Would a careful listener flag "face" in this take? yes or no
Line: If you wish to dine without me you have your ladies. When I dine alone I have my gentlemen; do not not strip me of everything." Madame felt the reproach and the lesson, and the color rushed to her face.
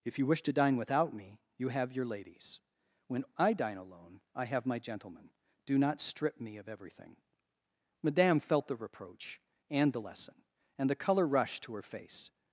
no